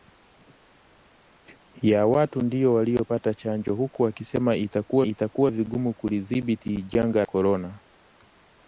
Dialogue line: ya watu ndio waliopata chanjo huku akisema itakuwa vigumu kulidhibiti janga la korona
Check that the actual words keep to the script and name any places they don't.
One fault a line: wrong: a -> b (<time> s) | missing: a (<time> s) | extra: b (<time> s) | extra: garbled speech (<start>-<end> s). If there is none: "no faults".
extra: itakuwa (5.0 s)
missing: la (7.2 s)